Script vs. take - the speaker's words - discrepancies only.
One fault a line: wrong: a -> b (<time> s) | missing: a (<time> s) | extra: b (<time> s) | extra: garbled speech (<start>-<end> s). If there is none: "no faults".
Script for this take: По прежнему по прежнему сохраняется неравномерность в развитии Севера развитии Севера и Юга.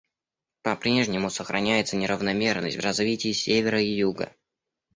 missing: по прежнему (1.3 s)
missing: развитии Севера (3.8 s)